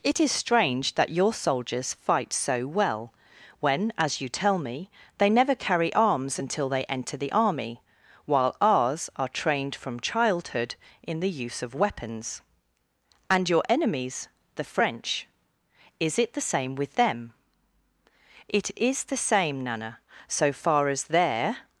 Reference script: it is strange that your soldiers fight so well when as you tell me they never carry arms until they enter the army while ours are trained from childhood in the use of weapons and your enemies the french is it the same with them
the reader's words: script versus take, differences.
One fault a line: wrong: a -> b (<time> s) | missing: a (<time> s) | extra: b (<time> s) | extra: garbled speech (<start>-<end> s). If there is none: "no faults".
extra: it is the same nana so far as their (18.5 s)